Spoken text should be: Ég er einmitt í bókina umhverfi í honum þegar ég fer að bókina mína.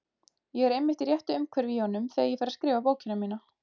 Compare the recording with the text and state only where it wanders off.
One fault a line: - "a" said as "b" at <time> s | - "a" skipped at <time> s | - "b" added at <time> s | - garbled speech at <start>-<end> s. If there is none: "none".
- "bókina" said as "réttu" at 1.1 s
- "skrifa" added at 2.6 s